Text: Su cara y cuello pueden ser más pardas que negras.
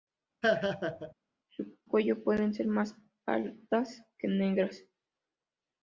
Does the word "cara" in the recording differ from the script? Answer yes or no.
yes